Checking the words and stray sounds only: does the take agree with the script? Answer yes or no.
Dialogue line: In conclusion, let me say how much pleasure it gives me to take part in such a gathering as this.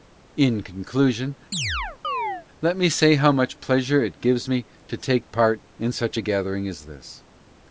no